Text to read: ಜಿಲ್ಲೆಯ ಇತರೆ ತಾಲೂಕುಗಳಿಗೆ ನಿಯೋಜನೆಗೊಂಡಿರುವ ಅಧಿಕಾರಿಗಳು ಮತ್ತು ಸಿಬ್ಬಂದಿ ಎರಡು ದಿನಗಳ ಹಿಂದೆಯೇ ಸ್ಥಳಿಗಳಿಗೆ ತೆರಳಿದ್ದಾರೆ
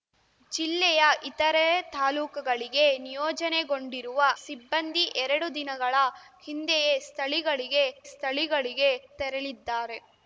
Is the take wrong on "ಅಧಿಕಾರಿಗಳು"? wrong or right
wrong